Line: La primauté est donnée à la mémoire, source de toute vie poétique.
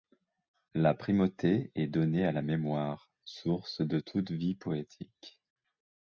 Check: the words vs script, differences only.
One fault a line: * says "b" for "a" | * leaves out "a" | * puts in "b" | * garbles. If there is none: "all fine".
all fine